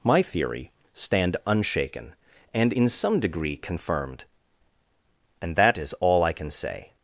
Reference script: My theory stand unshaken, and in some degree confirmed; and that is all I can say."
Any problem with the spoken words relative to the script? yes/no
no